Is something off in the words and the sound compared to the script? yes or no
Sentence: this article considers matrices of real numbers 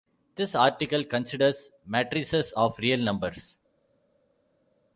no